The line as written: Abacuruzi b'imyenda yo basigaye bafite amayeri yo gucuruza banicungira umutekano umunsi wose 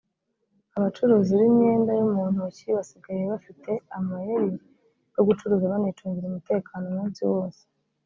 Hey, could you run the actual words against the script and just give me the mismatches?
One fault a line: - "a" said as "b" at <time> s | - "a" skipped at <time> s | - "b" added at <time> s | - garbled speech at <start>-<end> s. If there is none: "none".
- "mu ntoki" added at 2.1 s